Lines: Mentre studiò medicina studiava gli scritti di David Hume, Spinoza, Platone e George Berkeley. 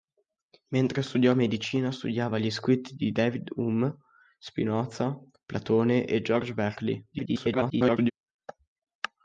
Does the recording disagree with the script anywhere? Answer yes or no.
yes